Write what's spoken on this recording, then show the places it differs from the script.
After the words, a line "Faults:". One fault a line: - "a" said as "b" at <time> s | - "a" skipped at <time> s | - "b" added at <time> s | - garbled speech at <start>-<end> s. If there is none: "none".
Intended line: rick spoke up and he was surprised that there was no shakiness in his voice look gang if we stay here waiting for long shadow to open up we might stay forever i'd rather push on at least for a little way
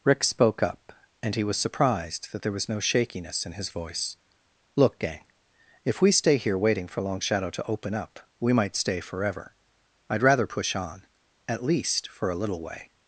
rick spoke up and he was surprised that there was no shakiness in his voice look gang if we stay here waiting for long shadow to open up we might stay forever i'd rather push on at least for a little way
Faults:
none